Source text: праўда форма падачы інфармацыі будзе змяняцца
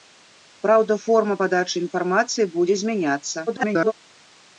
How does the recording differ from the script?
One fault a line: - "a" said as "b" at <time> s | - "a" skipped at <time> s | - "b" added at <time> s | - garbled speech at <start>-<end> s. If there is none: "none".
- garbled speech at 3.5-3.9 s